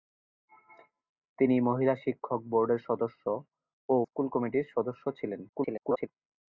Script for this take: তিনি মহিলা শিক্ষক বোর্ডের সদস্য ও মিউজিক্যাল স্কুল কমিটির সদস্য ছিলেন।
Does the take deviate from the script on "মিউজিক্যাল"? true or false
true